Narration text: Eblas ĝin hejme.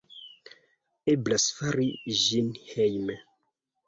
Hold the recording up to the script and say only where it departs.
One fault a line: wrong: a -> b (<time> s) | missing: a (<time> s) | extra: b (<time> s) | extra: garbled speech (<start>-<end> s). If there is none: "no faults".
extra: fari (1.6 s)